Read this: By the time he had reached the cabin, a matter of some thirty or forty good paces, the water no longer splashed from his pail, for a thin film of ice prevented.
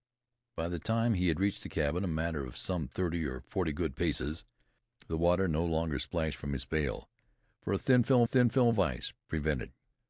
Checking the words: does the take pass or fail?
fail